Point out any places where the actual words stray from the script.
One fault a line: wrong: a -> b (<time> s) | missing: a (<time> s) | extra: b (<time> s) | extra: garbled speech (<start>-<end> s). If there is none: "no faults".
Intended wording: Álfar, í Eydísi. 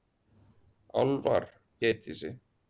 no faults